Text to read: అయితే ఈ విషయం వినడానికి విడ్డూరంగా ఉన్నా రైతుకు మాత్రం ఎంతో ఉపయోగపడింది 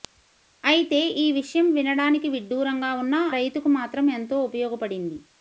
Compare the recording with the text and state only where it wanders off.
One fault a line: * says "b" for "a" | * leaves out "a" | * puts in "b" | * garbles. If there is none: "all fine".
all fine